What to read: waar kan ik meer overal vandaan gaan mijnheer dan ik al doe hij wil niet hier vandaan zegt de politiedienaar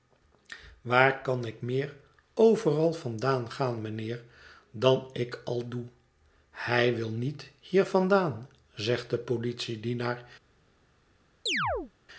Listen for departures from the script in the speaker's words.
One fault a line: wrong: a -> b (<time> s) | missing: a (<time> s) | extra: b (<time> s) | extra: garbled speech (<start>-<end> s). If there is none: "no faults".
no faults